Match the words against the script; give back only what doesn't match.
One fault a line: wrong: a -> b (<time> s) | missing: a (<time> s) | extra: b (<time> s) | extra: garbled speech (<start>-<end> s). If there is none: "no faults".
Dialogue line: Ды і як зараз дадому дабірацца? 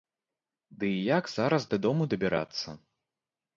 no faults